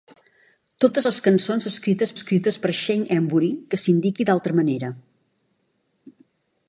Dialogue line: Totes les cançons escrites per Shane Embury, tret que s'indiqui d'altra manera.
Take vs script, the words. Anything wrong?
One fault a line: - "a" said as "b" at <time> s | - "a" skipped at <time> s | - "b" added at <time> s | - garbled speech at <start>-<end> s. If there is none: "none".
- "escrites" added at 2.1 s
- "tret" skipped at 3.5 s